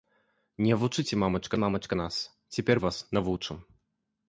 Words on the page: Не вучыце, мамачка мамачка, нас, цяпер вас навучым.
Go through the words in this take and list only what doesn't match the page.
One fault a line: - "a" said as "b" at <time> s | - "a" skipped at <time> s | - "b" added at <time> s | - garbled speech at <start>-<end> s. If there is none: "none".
none